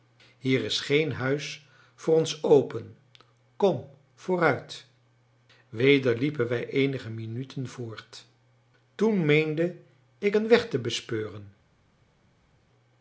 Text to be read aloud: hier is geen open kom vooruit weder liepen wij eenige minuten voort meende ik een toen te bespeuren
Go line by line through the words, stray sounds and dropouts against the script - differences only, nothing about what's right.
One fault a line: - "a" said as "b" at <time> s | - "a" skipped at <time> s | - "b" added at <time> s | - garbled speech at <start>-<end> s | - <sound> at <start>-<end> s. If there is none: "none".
- "huis voor ons" added at 1.1 s
- "toen" added at 8.9 s
- "toen" said as "weg" at 10.5 s